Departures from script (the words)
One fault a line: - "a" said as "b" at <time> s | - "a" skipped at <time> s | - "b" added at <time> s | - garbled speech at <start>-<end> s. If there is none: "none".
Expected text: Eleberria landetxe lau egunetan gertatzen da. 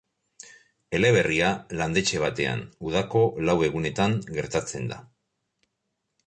- "batean udako" added at 2.2 s